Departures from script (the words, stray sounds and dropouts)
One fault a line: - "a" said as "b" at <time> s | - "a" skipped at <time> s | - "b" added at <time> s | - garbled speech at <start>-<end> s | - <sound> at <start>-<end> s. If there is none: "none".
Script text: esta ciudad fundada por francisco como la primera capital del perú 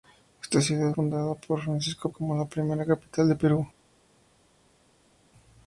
none